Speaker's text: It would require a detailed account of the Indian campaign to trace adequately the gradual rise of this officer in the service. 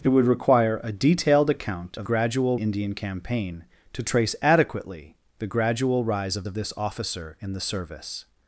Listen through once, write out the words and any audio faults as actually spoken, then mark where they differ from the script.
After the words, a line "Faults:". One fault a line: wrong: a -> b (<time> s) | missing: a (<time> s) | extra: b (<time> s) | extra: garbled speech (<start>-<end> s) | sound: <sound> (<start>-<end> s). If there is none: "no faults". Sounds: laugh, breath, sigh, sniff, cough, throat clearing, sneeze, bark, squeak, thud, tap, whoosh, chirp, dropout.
It would require a detailed account of gradual Indian campaign to trace adequately the gradual rise of of this officer in the service.
Faults:
wrong: the -> gradual (2.0 s)
extra: of (6.4 s)